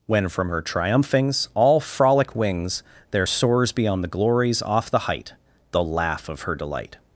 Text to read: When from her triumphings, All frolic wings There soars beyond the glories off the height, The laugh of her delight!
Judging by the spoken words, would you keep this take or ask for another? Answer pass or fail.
pass